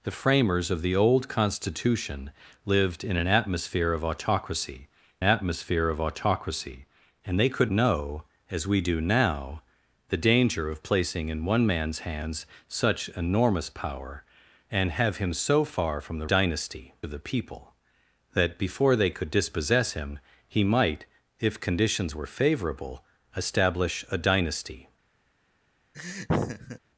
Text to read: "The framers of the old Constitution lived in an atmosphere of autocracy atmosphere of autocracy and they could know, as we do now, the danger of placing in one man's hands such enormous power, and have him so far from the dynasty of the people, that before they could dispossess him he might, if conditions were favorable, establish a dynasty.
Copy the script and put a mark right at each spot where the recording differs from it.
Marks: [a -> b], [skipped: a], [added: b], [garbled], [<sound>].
"The framers of the old Constitution lived in an atmosphere of autocracy atmosphere of autocracy and they could know, as we do now, the danger of placing in one man's hands such enormous power, and have him so far from the dynasty of the people, that before they could dispossess him he might, if conditions were favorable, establish a dynasty. [laugh]